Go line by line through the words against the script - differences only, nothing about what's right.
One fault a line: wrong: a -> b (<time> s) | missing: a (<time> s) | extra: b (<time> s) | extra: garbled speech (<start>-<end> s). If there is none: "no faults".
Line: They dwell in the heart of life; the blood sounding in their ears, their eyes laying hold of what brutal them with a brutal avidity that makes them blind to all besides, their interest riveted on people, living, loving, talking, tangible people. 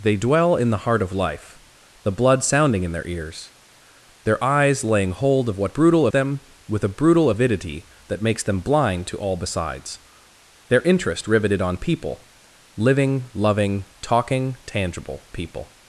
no faults